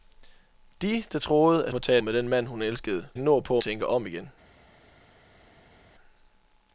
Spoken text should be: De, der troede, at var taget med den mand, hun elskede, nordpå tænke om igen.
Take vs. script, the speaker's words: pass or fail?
pass